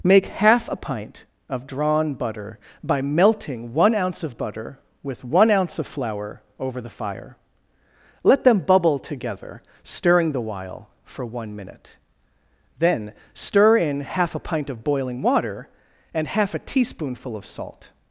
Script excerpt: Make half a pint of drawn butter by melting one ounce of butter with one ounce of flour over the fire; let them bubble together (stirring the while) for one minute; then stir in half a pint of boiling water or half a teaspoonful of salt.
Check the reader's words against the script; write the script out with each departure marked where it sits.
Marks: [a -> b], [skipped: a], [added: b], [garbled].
Make half a pint of drawn butter by melting one ounce of butter with one ounce of flour over the fire; let them bubble together (stirring the while) for one minute; then stir in half a pint of boiling water [or -> and] half a teaspoonful of salt.